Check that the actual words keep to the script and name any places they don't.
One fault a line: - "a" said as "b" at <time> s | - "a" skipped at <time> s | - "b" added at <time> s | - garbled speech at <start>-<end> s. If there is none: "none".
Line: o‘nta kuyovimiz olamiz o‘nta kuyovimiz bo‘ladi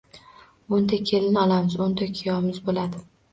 - "kuyovimiz" said as "kelin" at 1.1 s